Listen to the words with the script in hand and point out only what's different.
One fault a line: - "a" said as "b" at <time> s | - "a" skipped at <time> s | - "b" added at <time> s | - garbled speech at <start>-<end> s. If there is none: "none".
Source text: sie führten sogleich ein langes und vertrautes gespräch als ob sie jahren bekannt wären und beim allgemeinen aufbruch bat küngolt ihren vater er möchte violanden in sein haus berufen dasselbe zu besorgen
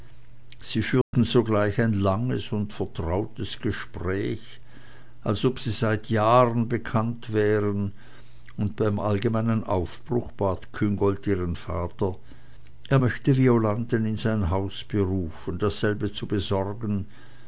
- "seit" added at 5.7 s